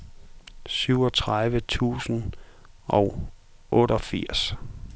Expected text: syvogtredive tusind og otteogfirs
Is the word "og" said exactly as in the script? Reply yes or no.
yes